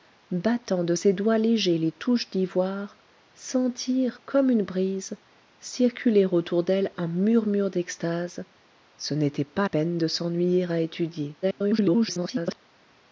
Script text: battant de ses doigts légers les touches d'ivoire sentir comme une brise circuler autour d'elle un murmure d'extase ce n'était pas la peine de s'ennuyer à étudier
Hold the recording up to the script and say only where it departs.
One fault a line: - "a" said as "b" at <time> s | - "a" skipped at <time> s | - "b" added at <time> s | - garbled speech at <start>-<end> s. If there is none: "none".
- "la" skipped at 9.7 s
- garbled speech at 11.4-12.6 s